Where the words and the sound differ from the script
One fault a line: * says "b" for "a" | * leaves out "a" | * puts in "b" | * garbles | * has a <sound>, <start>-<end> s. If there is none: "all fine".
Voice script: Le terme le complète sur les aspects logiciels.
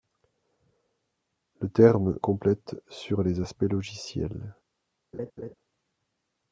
* leaves out "le"
* has a laugh, 5.1-5.5 s